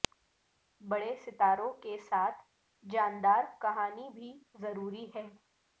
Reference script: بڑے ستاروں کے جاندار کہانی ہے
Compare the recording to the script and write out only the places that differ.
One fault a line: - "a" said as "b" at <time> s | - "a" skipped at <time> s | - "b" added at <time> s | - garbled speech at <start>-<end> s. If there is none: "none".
- "ساتھ" added at 2.1 s
- "بھی ضروری" added at 4.1 s